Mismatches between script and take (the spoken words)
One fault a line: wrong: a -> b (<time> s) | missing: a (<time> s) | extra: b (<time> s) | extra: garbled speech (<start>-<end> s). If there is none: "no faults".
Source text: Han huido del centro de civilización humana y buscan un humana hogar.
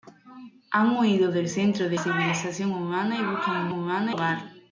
no faults